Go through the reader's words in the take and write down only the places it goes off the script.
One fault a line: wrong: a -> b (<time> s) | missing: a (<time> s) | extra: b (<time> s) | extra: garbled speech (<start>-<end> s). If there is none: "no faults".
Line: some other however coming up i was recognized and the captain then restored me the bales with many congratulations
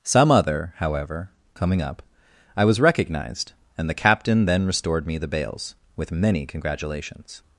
no faults